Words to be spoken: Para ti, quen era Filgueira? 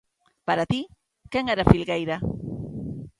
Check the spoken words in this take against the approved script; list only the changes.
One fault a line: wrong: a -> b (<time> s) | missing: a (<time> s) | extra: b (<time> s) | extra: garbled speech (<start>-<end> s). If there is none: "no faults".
no faults